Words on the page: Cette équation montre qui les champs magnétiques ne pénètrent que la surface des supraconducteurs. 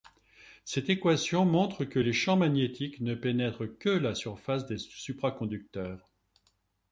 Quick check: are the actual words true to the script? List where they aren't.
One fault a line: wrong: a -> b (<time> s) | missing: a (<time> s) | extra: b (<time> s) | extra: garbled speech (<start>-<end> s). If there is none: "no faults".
wrong: qui -> que (1.9 s)